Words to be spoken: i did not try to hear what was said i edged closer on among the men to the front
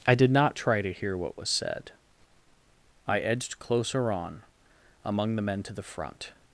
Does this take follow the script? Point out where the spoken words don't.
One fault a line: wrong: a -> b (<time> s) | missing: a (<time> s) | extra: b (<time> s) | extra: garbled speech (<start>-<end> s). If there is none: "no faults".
no faults